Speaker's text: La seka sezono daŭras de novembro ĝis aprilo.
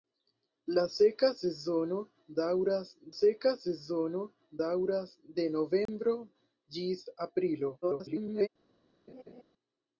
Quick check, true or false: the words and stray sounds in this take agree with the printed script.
false